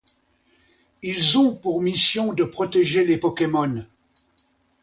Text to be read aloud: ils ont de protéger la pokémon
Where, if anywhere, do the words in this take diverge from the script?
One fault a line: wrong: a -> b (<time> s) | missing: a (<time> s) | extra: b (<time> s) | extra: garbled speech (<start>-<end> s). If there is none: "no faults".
extra: pour mission (1.6 s)
wrong: la -> les (3.0 s)